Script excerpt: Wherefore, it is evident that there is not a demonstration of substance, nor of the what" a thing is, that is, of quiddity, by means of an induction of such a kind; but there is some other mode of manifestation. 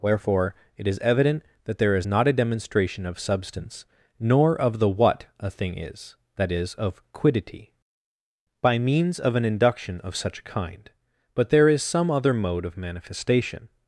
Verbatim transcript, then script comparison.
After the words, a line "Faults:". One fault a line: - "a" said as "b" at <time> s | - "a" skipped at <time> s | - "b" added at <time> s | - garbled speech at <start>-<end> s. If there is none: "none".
Wherefore, it is evident that there is not a demonstration of substance, nor of the what" a thing is, that is, of quiddity, by means of an induction of such a kind; but there is some other mode of manifestation.
Faults:
none